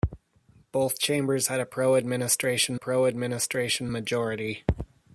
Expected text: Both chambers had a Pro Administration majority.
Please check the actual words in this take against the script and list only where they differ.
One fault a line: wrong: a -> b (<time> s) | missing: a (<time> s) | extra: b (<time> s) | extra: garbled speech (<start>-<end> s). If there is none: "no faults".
extra: Pro Administration (2.8 s)